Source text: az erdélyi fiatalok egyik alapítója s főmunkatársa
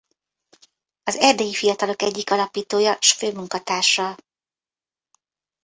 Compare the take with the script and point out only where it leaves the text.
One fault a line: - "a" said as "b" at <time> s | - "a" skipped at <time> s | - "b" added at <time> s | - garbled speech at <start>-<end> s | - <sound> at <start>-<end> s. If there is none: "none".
none